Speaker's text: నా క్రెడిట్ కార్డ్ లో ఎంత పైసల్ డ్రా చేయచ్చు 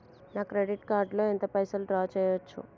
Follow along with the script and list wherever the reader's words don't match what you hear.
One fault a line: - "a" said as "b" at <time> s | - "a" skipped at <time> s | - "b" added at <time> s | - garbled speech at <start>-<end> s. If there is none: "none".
none